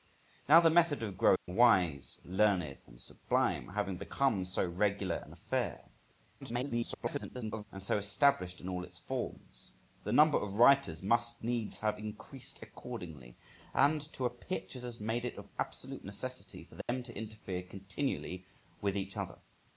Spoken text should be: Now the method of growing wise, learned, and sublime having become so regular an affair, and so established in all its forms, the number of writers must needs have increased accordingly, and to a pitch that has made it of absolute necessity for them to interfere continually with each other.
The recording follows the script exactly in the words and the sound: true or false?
false